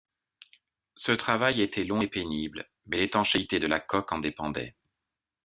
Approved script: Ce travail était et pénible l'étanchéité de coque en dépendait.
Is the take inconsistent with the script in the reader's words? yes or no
yes